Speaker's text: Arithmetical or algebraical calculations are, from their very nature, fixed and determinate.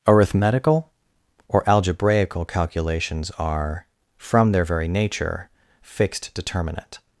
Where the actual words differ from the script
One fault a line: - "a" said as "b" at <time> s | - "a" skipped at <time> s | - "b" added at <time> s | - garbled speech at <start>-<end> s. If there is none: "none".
- "and" skipped at 6.3 s